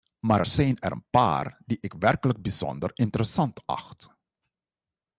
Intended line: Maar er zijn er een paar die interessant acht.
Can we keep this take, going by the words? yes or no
no